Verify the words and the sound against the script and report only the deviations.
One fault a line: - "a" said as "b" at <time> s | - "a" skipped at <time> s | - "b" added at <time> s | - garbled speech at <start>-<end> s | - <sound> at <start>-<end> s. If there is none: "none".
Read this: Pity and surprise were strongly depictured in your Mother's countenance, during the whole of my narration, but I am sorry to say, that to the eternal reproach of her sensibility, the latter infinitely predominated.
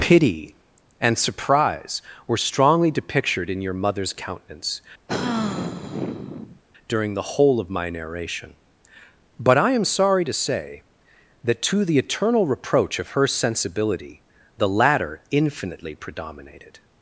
- sigh at 5.1-6.6 s